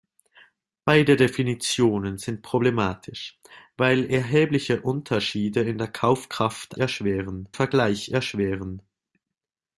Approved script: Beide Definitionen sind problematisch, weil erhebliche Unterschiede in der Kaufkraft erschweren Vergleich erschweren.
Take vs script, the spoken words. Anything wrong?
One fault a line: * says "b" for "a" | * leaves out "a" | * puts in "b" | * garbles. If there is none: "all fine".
all fine